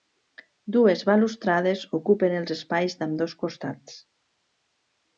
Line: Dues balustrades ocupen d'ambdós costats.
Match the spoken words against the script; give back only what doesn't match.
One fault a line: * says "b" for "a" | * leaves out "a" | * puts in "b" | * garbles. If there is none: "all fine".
* puts in "els espais"